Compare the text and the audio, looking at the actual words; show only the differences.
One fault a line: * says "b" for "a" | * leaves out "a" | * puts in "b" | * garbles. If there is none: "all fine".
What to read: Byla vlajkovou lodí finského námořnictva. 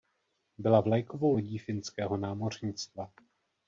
all fine